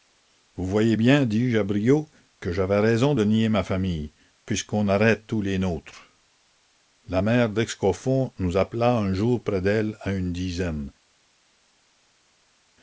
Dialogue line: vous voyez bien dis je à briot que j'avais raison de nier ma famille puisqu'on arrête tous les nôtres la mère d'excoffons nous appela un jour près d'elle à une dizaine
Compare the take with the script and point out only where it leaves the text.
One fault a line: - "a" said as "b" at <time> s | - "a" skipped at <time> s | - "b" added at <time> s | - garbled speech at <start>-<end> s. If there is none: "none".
none